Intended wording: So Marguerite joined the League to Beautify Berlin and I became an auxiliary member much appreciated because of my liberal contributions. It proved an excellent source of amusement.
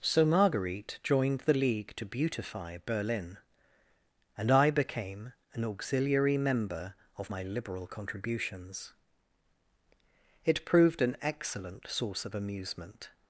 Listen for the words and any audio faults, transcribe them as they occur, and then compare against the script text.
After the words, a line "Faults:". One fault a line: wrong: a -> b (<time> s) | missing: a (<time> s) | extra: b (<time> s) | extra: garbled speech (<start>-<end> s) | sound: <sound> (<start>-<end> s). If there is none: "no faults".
So Marguerite joined the League to Beautify Berlin and I became an auxiliary member of my liberal contributions. It proved an excellent source of amusement.
Faults:
missing: much appreciated because (7.0 s)